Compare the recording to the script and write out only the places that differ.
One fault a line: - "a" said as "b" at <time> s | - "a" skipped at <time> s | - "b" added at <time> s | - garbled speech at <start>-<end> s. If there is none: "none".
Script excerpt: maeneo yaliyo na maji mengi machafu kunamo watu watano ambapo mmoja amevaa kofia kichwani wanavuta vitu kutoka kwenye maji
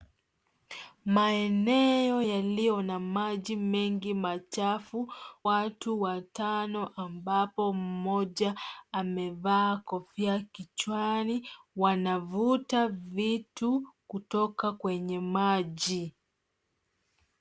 - "kunamo" skipped at 5.1 s